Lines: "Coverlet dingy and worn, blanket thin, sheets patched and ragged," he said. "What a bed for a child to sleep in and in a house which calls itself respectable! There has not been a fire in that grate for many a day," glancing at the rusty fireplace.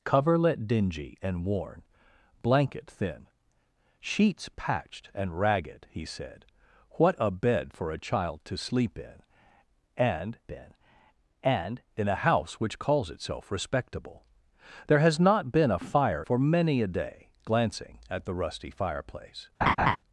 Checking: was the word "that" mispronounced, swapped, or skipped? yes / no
yes